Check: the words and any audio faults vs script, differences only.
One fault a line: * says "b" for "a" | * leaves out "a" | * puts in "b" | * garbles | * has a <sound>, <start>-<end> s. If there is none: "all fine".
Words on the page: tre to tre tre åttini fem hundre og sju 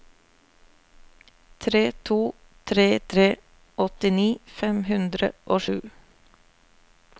all fine